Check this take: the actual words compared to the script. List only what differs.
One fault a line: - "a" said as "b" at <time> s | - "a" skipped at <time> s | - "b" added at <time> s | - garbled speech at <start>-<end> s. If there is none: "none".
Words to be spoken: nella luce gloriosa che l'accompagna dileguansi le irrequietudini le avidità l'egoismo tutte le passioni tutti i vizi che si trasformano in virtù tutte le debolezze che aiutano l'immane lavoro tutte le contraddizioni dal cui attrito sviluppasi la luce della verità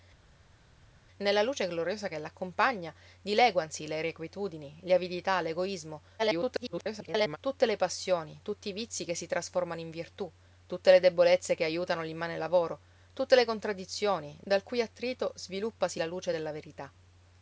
- garbled speech at 6.2-7.4 s